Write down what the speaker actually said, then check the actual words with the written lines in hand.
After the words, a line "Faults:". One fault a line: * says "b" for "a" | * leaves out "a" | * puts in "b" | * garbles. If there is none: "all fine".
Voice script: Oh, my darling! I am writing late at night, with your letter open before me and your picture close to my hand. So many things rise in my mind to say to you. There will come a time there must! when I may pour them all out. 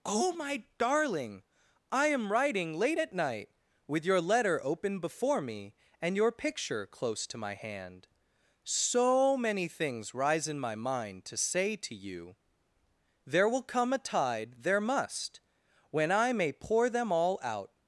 Oh, my darling! I am writing late at night, with your letter open before me and your picture close to my hand. So many things rise in my mind to say to you. There will come a tide there must! when I may pour them all out.
Faults:
* says "tide" for "time"